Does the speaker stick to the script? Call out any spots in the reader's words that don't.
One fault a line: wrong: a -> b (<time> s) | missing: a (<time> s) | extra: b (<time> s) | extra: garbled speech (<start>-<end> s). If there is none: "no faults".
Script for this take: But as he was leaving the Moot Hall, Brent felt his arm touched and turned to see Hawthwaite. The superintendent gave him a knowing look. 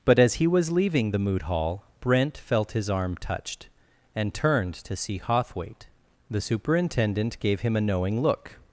no faults